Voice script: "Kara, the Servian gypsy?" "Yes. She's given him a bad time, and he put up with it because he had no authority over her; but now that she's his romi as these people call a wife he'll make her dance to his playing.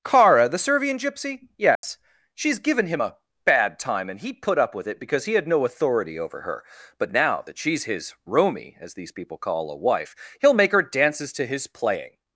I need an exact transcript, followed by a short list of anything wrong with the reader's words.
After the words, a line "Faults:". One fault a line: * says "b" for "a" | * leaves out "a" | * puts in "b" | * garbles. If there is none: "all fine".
"Kara, the Servian gypsy?" "Yes. She's given him a bad time, and he put up with it because he had no authority over her; but now that she's his romi as these people call a wife he'll make her dances to his playing.
Faults:
* says "dances" for "dance"